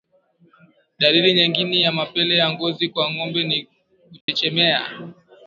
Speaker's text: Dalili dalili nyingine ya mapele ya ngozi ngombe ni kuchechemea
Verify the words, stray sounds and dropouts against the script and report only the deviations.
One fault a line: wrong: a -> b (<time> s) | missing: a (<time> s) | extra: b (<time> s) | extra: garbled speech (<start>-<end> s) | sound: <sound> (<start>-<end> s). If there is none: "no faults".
missing: dalili (1.3 s)
extra: kwa (2.9 s)
sound: dropout (4.2-4.3 s)